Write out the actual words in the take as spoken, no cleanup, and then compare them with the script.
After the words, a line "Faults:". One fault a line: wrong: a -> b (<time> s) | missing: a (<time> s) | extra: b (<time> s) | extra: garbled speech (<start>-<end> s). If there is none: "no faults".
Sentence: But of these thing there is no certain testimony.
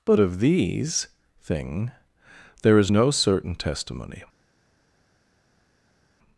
But of these thing there is no certain testimony.
Faults:
no faults